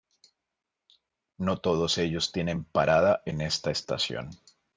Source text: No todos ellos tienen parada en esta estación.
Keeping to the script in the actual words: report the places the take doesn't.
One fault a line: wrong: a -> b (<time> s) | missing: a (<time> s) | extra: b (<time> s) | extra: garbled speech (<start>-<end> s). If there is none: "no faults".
no faults